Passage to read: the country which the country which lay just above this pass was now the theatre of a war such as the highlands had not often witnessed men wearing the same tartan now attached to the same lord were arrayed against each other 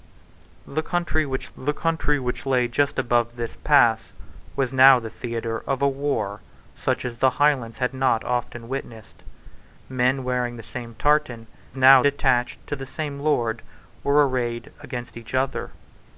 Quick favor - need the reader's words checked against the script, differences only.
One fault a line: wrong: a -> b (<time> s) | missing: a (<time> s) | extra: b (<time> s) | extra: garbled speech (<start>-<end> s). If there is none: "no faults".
no faults